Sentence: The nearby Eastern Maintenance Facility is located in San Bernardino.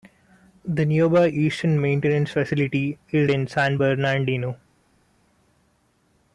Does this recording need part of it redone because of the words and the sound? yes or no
yes